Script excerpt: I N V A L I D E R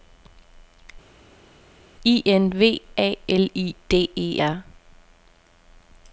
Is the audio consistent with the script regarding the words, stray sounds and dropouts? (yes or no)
yes